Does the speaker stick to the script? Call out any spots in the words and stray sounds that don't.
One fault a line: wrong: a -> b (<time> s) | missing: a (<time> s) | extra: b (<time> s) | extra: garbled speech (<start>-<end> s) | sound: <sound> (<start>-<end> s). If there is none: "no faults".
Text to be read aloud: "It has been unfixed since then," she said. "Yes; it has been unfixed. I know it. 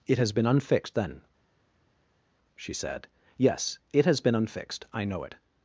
missing: since (1.0 s)